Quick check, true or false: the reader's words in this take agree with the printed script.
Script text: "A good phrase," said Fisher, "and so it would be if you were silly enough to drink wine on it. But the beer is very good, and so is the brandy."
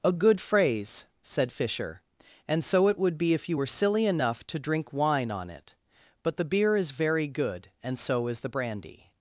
true